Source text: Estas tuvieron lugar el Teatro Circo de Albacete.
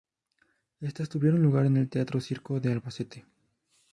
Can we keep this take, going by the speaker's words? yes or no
no